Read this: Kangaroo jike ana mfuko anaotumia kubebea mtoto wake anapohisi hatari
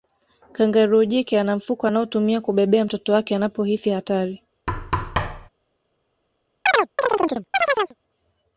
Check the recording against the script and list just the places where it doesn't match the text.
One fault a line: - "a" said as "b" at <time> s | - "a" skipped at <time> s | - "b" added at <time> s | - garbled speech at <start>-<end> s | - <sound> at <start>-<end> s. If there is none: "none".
- thud at 4.7-5.5 s
- chirp at 6.7-7.9 s